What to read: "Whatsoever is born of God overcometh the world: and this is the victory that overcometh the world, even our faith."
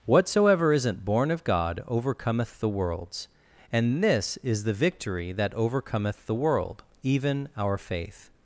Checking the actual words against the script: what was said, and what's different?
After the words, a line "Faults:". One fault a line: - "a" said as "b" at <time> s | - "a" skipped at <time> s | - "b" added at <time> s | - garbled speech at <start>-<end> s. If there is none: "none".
"Whatsoever isn't born of God overcometh the worlds: and this is the victory that overcometh the world, even our faith."
Faults:
- "is" said as "isn't" at 0.7 s
- "world" said as "worlds" at 2.7 s